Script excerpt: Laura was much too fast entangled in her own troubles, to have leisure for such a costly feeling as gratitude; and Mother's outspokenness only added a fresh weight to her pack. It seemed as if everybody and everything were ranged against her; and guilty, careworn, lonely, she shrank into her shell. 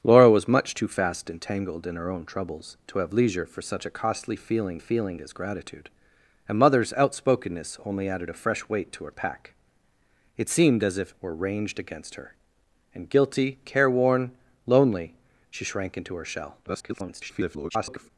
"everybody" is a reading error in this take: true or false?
true